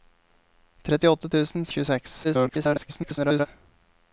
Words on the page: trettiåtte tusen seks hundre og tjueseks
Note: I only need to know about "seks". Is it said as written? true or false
false